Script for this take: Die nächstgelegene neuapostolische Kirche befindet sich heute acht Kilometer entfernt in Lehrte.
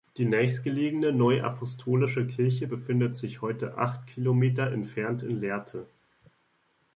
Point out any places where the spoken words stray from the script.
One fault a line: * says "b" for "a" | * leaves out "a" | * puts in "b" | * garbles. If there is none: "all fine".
all fine